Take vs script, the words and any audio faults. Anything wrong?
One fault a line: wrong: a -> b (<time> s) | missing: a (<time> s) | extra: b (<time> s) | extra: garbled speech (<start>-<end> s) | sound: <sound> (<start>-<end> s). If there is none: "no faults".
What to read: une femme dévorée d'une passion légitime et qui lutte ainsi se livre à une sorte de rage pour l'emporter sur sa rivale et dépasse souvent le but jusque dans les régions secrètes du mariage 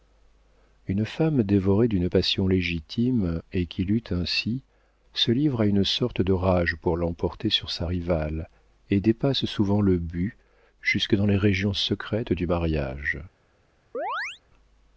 sound: chirp (13.9-14.4 s)